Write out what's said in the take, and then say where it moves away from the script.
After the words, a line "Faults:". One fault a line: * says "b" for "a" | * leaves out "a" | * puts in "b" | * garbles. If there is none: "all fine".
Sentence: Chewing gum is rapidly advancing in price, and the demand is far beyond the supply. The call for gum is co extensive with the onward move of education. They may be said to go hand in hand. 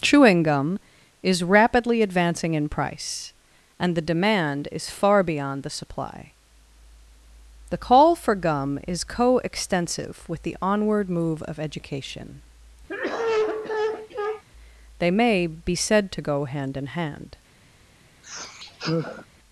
Chewing gum is rapidly advancing in price, and the demand is far beyond the supply. The call for gum is co extensive with the onward move of education. They may be said to go hand in hand.
Faults:
all fine